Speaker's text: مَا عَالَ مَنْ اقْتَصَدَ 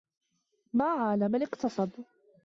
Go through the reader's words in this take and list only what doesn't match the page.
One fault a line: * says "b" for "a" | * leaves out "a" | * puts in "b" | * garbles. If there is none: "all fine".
all fine